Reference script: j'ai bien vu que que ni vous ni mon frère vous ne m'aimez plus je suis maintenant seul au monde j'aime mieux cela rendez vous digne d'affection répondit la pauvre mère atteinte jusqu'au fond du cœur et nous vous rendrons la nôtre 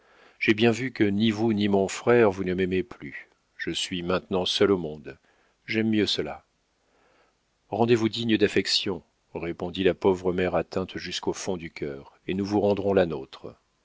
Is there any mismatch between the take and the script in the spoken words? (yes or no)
yes